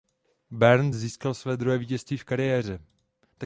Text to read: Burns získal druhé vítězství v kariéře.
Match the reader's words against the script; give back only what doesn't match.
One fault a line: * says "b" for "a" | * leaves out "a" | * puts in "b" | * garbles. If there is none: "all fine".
* puts in "své"